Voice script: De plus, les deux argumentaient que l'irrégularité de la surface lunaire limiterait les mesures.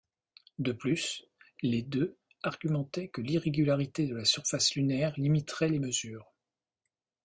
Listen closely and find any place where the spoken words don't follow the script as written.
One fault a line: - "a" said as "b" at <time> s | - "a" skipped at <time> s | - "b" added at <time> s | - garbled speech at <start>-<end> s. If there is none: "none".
none